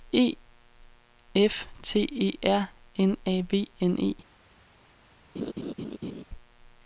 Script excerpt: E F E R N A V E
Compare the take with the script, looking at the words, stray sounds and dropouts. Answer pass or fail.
fail